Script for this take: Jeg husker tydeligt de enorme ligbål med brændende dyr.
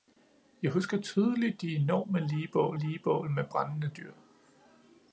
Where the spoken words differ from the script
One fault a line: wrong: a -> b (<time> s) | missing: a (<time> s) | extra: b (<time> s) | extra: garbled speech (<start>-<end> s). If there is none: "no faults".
extra: ligbål (2.8 s)